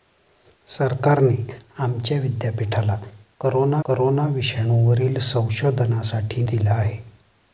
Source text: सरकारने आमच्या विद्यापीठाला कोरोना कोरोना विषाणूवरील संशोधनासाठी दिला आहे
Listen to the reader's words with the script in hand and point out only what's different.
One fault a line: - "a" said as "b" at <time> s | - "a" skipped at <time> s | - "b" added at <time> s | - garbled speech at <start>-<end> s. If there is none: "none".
none